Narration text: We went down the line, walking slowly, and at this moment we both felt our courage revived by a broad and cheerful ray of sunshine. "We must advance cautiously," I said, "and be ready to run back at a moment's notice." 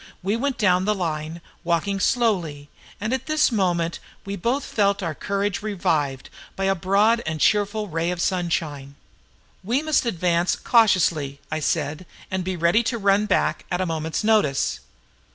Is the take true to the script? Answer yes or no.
yes